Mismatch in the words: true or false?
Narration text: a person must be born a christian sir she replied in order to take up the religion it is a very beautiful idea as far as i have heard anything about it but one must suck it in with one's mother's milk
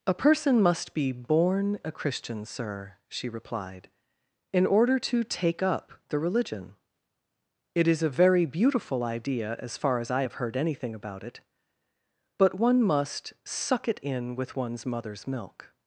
false